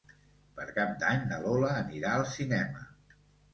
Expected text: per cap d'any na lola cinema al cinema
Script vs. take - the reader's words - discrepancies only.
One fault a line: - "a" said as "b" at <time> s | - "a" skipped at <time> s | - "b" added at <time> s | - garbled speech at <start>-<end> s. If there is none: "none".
- "cinema" said as "anirà" at 1.9 s